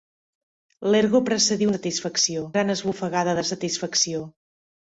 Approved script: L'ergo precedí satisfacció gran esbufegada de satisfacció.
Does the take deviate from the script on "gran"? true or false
false